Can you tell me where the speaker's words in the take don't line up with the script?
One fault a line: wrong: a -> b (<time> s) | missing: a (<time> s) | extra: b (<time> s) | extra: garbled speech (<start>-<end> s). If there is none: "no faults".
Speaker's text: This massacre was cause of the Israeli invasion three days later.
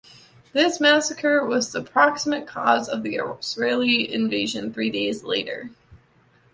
extra: the proximate (1.7 s)